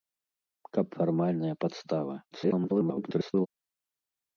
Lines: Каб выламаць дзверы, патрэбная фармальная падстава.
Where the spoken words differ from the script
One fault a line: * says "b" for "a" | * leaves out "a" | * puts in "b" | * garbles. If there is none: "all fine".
* leaves out "выламаць дзверы патрэбная"
* garbles